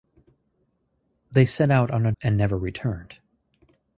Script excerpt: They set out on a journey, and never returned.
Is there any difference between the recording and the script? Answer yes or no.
yes